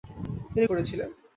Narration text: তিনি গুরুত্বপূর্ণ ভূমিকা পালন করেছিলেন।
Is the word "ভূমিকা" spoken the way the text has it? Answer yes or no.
no